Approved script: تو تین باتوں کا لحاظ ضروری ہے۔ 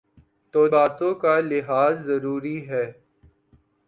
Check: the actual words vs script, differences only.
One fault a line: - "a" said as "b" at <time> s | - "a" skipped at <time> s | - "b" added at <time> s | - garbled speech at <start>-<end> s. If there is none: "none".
- "تین" skipped at 0.7 s